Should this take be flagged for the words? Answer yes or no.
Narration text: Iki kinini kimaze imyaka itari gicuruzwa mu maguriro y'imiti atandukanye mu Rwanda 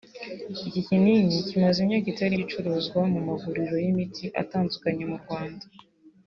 no